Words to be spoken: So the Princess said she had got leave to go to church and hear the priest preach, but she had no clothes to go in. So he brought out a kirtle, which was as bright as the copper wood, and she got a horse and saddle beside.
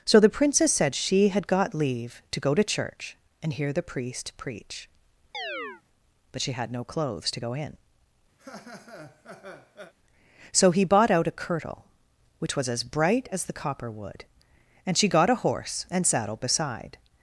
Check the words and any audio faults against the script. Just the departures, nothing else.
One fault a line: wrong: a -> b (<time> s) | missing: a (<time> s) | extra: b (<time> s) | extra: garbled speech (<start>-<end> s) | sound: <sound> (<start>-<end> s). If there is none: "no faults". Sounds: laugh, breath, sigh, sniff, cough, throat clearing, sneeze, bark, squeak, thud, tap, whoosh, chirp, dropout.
sound: chirp (5.3-5.8 s)
sound: laugh (8.4-9.9 s)
wrong: brought -> bought (10.8 s)